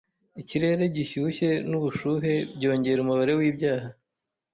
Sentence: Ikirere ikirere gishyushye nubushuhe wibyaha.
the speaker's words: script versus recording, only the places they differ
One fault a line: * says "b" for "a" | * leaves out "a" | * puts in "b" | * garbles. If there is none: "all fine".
* leaves out "ikirere"
* puts in "byongera umubare"